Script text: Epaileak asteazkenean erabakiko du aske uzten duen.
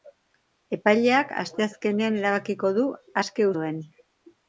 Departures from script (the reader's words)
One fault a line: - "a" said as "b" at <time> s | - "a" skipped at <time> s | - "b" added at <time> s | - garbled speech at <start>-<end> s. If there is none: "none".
- "uzten" skipped at 3.5 s